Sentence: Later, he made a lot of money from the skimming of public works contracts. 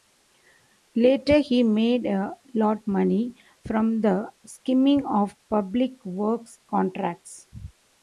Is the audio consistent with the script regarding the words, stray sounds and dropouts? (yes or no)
no